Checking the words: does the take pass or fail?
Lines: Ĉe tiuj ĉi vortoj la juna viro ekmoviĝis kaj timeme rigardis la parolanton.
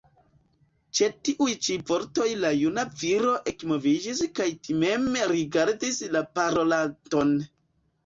pass